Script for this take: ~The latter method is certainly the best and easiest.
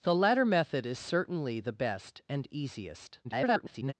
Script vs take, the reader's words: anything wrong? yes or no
yes